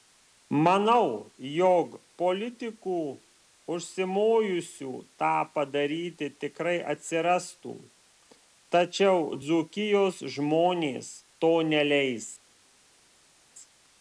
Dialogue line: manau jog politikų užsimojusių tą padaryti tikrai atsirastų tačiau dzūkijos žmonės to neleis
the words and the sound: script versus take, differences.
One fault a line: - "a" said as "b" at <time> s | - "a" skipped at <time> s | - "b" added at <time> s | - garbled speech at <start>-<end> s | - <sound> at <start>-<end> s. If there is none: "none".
none